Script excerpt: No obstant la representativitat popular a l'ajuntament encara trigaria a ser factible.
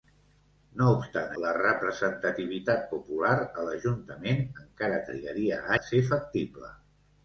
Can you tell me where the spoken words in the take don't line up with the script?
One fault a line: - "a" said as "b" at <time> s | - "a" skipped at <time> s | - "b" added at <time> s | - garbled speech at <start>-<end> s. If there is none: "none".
none